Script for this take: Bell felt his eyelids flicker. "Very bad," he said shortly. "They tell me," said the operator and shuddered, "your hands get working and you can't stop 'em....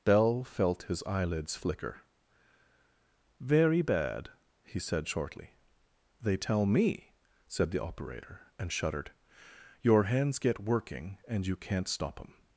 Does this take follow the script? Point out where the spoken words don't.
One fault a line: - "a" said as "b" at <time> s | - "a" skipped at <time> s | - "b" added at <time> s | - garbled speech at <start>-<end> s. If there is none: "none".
none